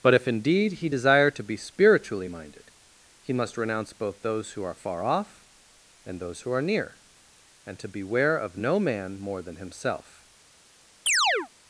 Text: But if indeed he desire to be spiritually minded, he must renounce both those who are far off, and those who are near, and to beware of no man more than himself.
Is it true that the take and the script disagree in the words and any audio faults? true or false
true